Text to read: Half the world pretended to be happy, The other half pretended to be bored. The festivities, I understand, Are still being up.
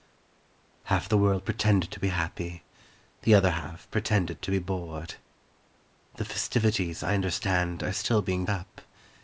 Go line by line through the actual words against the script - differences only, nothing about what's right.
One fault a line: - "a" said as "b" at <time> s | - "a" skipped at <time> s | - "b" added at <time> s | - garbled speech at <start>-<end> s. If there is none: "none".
none